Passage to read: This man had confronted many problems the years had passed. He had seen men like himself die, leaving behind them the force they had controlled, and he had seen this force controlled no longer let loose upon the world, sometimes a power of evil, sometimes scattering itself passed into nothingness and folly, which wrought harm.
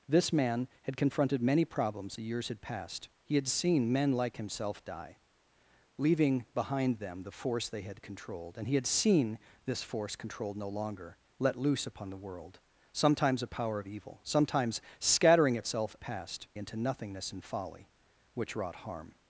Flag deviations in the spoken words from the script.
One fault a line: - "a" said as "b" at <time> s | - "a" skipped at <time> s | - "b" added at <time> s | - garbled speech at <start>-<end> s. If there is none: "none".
none